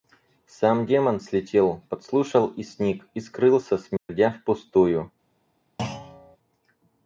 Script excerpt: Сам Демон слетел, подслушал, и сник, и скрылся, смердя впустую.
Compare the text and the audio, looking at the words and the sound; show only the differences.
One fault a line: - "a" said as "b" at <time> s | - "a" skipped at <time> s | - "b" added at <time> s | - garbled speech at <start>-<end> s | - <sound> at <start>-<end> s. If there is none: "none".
- dropout at 4.0-4.1 s
- thud at 5.8-6.4 s